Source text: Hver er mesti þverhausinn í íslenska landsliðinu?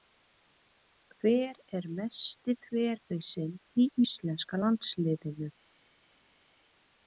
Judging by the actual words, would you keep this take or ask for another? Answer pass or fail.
pass